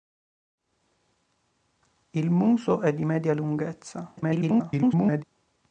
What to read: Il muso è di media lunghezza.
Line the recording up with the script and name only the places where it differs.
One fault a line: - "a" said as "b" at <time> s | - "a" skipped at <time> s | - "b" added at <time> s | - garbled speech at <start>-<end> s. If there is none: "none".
- garbled speech at 4.2-5.2 s